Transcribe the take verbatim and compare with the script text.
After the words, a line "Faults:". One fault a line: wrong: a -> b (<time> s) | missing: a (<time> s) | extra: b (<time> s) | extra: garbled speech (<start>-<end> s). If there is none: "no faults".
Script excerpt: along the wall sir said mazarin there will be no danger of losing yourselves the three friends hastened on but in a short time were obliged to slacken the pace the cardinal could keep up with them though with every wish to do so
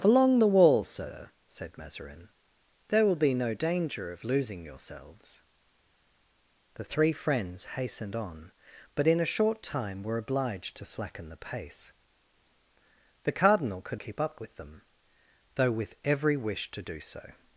along the wall sir said mazarin there will be no danger of losing yourselves the three friends hastened on but in a short time were obliged to slacken the pace the cardinal could keep up with them though with every wish to do so
Faults:
no faults